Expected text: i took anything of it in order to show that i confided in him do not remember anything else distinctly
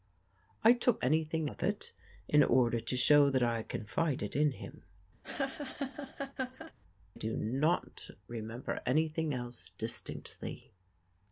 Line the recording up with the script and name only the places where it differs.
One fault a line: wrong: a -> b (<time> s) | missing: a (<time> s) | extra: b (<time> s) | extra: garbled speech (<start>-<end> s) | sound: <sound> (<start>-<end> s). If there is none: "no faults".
sound: laugh (5.2-6.7 s)